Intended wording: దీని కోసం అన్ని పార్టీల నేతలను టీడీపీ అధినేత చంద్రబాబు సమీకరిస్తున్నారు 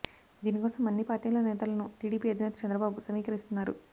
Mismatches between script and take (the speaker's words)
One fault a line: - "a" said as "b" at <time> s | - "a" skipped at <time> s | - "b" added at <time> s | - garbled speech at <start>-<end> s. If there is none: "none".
none